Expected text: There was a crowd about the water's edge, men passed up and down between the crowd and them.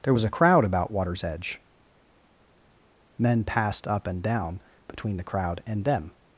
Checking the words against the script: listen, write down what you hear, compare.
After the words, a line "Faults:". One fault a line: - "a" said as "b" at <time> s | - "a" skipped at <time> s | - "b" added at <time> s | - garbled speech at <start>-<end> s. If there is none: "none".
There was a crowd about water's edge, men passed up and down between the crowd and them.
Faults:
- "the" skipped at 0.9 s